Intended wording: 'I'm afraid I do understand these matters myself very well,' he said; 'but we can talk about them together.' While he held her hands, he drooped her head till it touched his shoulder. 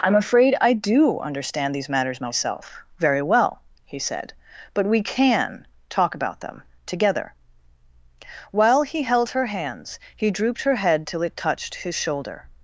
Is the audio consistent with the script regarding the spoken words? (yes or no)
yes